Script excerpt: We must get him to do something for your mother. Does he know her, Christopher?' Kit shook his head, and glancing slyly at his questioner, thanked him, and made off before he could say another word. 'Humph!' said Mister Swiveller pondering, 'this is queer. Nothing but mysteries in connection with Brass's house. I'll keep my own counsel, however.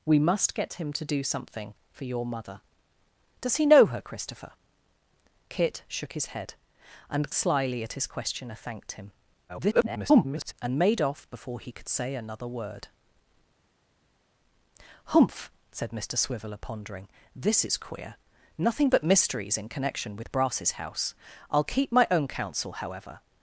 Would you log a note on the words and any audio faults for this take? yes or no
yes